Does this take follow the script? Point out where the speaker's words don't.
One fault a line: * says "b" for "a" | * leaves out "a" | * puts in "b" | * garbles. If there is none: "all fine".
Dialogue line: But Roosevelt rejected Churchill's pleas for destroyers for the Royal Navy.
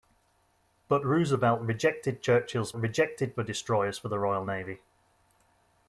* says "rejected" for "pleas"